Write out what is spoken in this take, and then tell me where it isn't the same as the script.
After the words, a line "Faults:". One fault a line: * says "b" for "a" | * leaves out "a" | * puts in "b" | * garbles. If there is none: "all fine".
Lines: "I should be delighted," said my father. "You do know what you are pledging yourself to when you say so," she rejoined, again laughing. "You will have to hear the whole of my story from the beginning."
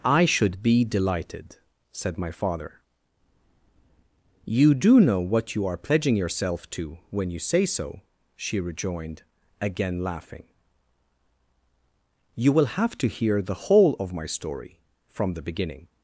"I should be delighted," said my father. "You do know what you are pledging yourself to when you say so," she rejoined, again laughing. "You will have to hear the whole of my story from the beginning."
Faults:
all fine